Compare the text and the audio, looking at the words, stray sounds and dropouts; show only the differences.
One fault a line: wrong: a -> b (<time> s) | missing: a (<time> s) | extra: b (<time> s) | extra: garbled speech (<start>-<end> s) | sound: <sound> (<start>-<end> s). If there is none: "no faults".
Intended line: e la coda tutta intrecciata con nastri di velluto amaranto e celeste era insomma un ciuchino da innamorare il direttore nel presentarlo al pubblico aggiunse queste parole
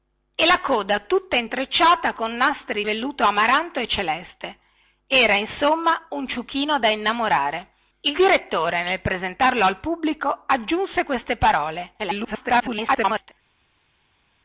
missing: di (2.9 s)
extra: garbled speech (12.0-13.3 s)